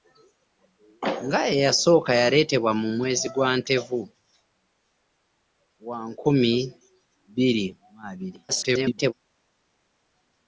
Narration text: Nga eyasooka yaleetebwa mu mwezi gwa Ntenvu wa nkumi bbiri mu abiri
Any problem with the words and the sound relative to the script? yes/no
yes